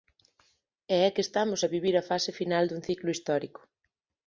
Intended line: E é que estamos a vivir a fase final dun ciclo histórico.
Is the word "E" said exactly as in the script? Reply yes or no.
yes